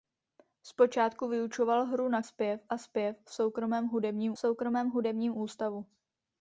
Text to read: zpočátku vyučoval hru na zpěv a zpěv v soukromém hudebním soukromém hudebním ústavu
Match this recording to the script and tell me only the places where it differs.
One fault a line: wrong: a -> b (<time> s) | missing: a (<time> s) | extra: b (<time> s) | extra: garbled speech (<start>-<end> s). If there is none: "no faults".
no faults